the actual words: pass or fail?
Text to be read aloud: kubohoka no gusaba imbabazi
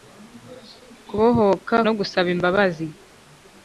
pass